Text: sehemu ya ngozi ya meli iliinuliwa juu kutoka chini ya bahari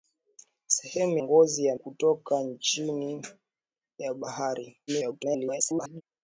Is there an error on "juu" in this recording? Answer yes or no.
yes